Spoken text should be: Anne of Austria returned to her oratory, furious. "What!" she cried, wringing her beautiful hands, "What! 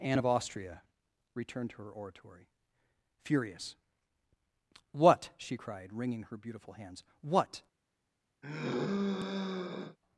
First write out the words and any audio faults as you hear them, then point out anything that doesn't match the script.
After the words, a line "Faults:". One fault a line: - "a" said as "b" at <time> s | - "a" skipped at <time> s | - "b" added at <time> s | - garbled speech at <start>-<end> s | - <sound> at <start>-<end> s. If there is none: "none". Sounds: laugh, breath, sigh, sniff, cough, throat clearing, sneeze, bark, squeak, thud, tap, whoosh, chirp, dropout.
Anne of Austria returned to her oratory, furious. "What!" she cried, wringing her beautiful hands, "What!
Faults:
- sigh at 8.4-10.0 s